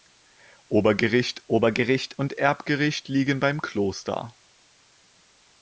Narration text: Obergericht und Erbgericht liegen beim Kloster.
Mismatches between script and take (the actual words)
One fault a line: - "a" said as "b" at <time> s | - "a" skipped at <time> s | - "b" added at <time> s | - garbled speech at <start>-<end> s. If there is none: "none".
- "obergericht" added at 1.5 s